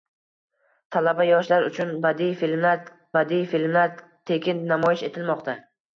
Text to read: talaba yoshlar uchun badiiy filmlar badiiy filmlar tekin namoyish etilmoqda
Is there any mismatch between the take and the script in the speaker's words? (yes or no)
no